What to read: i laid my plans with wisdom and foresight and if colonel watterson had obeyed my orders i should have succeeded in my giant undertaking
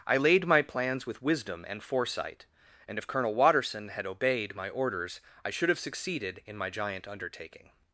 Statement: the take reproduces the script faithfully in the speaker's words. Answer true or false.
true